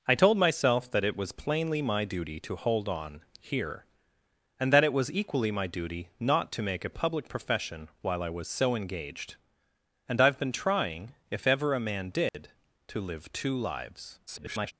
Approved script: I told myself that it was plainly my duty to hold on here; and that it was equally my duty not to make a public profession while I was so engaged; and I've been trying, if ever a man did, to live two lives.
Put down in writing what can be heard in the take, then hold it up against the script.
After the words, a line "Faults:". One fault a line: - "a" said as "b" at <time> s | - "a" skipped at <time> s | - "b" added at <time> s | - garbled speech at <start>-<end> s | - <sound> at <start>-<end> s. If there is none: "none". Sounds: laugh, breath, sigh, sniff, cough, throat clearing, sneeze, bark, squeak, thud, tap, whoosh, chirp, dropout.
I told myself that it was plainly my duty to hold on here; and that it was equally my duty not to make a public profession while I was so engaged; and I've been trying, if ever a man did, to live two lives. [garbled]
Faults:
- dropout at 12.3-12.3 s
- garbled speech at 14.3-14.7 s